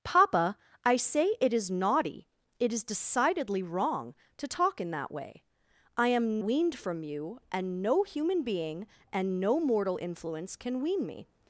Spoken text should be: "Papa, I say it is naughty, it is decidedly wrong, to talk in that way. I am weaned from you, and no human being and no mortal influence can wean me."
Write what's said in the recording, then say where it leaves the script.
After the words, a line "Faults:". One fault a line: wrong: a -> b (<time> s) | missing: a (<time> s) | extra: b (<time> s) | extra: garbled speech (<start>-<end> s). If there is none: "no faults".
"Papa, I say it is naughty, it is decidedly wrong, to talk in that way. I am weaned from you, and no human being and no mortal influence can wean me."
Faults:
no faults